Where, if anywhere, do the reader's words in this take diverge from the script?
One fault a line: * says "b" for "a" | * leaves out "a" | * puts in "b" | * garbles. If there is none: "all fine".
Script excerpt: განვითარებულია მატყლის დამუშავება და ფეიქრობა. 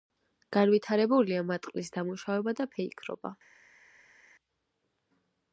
all fine